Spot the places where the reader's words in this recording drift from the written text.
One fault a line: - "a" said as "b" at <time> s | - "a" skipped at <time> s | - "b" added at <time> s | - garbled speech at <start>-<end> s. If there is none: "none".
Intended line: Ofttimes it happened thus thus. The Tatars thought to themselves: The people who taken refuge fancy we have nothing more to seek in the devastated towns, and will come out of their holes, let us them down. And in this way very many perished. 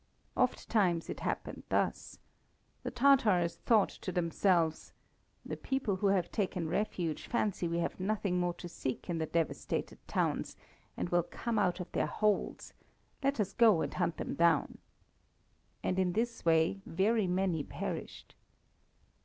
- "thus" skipped at 2.2 s
- "have" added at 6.1 s
- "go and hunt" added at 13.5 s